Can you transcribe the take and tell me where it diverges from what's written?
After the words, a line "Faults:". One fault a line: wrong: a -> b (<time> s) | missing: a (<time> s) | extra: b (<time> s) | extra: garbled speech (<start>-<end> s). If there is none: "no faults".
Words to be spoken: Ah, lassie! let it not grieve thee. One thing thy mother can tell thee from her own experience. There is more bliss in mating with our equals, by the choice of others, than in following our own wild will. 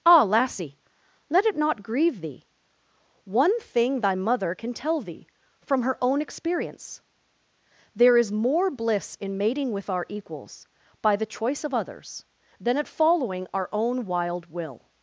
Ah, lassie! let it not grieve thee. One thing thy mother can tell thee from her own experience. There is more bliss in mating with our equals, by the choice of others, than at following our own wild will.
Faults:
wrong: in -> at (12.8 s)